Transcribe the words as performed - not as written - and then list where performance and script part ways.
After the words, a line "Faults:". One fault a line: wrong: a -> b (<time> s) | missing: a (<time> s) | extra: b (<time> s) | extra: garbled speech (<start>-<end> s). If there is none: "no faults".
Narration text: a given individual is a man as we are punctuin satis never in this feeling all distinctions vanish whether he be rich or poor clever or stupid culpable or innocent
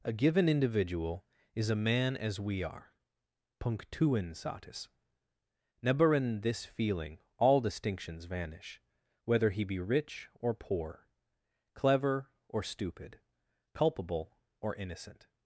a given individual is a man as we are punctuin satis never in this feeling all distinctions vanish whether he be rich or poor clever or stupid culpable or innocent
Faults:
no faults